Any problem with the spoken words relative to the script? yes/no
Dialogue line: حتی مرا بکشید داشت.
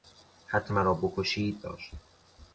no